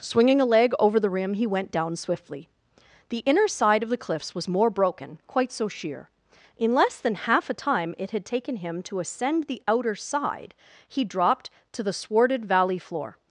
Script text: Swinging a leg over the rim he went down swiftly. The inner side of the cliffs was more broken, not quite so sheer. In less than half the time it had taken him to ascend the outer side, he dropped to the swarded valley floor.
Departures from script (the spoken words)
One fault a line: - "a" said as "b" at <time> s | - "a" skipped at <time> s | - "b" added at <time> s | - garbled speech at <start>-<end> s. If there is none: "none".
- "not" skipped at 5.2 s
- "the" said as "a" at 7.5 s